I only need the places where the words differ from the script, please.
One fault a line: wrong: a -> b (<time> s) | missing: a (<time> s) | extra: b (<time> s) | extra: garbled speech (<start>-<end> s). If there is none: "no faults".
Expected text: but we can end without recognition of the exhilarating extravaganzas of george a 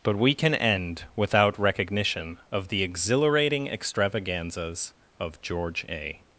no faults